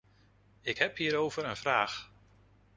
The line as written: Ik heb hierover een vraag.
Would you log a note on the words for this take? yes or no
no